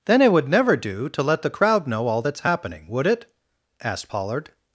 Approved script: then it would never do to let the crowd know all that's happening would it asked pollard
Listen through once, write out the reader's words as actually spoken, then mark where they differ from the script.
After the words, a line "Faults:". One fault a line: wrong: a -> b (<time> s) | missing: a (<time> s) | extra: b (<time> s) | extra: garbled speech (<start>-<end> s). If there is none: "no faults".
then it would never do to let the crowd know all that's happening would it asked pollard
Faults:
no faults